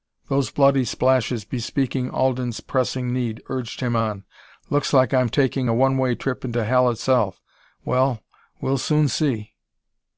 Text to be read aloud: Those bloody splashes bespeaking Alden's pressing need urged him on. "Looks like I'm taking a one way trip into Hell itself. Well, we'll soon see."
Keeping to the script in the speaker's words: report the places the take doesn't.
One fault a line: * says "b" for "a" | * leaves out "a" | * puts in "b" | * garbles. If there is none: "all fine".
all fine